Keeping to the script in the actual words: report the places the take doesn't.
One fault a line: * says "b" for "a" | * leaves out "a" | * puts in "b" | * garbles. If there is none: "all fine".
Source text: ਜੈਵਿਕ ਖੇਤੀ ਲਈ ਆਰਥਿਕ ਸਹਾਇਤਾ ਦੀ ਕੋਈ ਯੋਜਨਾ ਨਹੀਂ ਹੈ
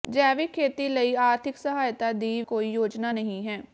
all fine